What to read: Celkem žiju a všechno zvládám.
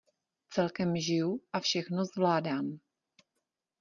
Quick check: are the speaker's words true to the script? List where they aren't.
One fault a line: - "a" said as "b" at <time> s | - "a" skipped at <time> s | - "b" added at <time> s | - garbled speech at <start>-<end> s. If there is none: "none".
none